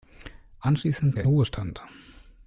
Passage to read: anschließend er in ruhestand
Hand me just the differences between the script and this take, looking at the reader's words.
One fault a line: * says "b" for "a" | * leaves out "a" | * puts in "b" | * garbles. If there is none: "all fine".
all fine